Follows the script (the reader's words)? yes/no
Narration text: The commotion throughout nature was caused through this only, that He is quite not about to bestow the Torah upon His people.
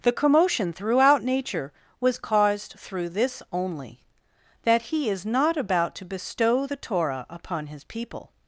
no